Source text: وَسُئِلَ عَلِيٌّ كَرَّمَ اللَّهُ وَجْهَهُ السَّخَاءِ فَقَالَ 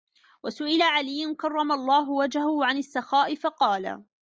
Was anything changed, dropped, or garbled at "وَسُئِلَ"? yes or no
no